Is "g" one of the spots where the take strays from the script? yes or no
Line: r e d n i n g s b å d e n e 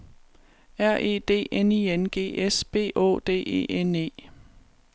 no